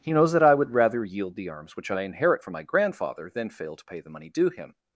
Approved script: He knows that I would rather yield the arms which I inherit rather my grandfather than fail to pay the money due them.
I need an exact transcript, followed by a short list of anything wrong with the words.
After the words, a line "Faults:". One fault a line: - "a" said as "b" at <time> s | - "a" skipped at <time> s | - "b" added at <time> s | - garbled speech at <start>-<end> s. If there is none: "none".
He knows that I would rather yield the arms which I inherit from my grandfather than fail to pay the money due him.
Faults:
- "rather" said as "from" at 2.4 s
- "them" said as "him" at 4.5 s